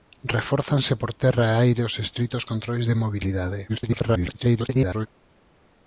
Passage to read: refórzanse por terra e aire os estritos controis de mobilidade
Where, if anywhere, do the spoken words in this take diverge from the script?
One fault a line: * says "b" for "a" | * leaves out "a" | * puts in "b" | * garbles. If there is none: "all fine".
* garbles